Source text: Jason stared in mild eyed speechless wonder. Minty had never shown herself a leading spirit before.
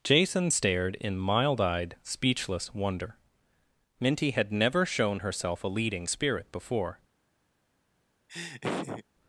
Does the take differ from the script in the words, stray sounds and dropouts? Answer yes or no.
yes